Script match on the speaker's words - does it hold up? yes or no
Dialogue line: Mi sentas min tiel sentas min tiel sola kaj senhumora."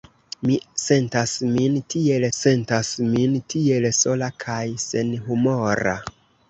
yes